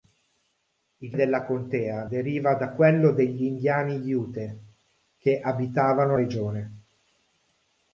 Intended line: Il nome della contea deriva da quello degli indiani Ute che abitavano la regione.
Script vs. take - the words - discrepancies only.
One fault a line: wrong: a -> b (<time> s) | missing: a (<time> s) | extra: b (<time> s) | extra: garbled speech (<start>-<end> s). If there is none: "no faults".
missing: nome (1.1 s)
missing: la (6.2 s)